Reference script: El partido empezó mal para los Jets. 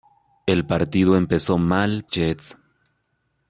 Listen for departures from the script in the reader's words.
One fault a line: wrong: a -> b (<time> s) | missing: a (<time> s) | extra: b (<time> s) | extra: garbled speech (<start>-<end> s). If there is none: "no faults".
missing: para los (2.1 s)